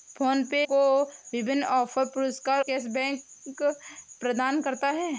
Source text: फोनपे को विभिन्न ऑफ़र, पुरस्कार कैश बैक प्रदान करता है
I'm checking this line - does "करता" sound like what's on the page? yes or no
yes